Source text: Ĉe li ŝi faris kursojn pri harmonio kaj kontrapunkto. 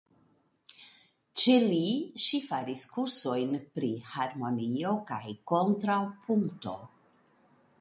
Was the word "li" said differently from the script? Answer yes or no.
no